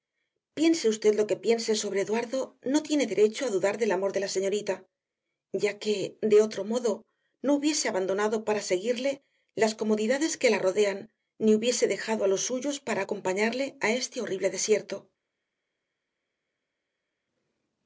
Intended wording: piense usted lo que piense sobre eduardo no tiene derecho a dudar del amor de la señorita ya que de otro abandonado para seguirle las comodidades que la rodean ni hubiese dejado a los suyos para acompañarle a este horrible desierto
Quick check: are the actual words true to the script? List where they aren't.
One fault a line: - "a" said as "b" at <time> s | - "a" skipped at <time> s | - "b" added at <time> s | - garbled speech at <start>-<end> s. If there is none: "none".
- "modo no hubiese" added at 6.6 s